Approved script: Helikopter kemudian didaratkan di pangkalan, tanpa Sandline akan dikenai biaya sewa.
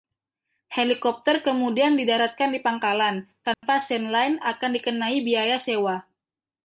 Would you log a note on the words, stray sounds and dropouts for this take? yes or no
yes